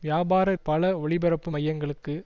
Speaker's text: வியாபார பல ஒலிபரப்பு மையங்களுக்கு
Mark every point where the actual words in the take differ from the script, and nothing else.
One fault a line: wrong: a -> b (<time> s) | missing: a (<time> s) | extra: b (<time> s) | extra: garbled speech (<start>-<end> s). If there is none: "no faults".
no faults